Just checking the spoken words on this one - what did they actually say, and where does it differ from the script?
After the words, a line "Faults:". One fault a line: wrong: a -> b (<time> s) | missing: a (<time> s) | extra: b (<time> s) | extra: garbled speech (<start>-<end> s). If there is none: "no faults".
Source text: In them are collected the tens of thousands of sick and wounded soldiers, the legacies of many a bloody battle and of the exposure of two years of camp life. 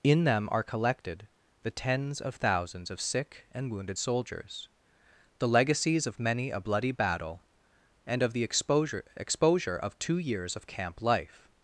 In them are collected the tens of thousands of sick and wounded soldiers, the legacies of many a bloody battle and of the exposure exposure of two years of camp life.
Faults:
extra: exposure (9.2 s)